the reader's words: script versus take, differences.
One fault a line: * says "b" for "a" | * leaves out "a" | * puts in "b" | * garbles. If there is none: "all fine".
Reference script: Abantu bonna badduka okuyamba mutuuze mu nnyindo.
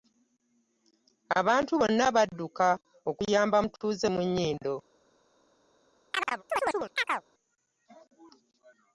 all fine